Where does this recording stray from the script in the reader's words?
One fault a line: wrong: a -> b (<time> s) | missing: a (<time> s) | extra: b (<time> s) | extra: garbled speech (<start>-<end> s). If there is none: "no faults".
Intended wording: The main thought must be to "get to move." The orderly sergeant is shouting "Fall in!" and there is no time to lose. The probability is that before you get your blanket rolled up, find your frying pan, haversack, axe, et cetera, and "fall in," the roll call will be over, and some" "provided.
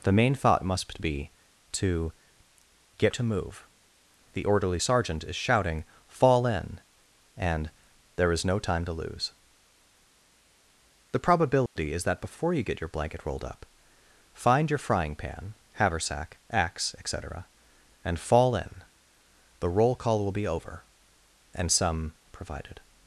no faults